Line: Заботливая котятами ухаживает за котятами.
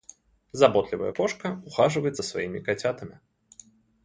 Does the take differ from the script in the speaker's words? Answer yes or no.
yes